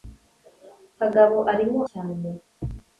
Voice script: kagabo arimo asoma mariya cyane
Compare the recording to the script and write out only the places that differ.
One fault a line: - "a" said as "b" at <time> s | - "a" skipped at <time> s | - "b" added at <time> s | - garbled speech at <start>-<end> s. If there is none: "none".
- "asoma mariya" skipped at 1.8 s